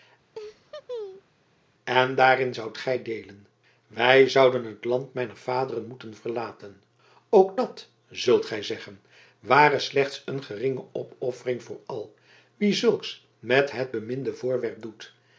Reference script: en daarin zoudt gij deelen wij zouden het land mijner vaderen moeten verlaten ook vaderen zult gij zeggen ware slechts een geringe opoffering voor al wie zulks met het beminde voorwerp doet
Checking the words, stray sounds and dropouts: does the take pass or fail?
fail